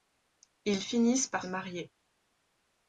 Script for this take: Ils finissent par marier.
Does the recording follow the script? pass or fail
pass